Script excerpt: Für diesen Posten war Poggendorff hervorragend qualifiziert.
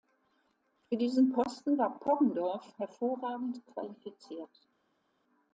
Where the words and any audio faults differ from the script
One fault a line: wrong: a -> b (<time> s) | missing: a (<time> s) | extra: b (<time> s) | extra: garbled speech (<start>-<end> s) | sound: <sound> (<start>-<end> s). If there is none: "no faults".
no faults